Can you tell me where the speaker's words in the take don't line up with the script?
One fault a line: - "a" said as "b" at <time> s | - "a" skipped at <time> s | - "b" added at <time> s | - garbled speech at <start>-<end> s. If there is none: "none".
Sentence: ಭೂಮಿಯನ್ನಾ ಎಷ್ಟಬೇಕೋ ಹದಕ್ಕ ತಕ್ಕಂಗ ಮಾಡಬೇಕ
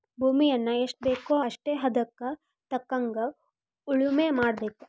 - "ಅಷ್ಟೇ" added at 1.4 s
- "ಉಳುಮೆ" added at 3.9 s